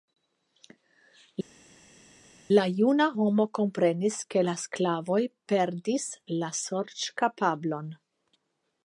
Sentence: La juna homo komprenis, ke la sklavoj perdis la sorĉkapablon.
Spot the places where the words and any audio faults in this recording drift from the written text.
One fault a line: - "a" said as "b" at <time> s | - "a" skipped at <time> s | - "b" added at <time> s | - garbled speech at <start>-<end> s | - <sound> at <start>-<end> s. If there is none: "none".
none